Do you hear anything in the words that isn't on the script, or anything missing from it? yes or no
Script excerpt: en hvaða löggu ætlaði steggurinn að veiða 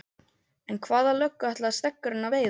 no